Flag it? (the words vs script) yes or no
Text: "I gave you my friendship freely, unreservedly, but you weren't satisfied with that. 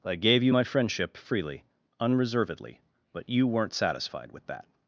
no